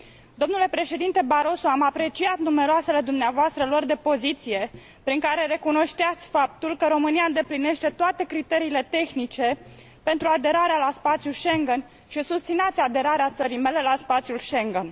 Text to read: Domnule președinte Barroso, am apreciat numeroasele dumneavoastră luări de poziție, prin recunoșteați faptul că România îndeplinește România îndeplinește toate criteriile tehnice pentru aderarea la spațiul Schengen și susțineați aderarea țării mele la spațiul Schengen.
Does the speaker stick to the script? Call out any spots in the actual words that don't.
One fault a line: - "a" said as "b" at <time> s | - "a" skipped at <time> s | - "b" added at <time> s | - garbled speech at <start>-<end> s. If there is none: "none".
- "care" added at 5.2 s
- "România îndeplinește" skipped at 7.9 s